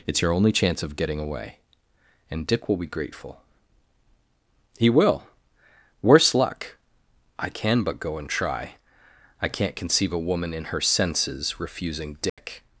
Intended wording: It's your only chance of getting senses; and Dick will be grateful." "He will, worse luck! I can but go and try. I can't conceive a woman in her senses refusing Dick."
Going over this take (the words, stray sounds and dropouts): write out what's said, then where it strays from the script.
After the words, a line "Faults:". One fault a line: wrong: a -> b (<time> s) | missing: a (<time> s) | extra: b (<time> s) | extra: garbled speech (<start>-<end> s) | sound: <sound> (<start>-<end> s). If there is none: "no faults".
It's your only chance of getting away; and Dick will be grateful." "He will, worse luck! I can but go and try. I can't conceive a woman in her senses refusing Dick."
Faults:
wrong: senses -> away (1.2 s)
sound: dropout (12.3-12.4 s)